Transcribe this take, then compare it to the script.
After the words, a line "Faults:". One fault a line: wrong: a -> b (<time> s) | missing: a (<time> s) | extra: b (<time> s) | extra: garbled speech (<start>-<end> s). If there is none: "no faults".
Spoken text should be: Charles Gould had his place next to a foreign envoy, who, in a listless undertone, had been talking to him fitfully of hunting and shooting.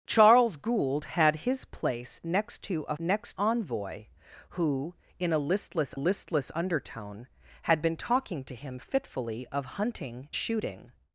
Charles Gould had his place next to a next envoy, who, in a listless listless undertone, had been talking to him fitfully of hunting shooting.
Faults:
wrong: foreign -> next (3.0 s)
extra: listless (5.9 s)
missing: and (10.3 s)